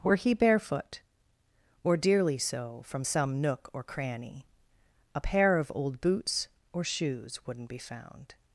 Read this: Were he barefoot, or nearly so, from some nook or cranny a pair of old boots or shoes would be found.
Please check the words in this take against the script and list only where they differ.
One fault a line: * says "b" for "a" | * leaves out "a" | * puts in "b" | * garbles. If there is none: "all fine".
* says "dearly" for "nearly"
* says "wouldn't" for "would"